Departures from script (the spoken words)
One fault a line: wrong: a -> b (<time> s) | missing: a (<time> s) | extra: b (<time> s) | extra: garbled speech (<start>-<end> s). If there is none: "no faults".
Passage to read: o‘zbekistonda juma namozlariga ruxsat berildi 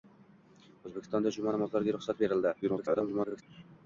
extra: garbled speech (2.6-3.4 s)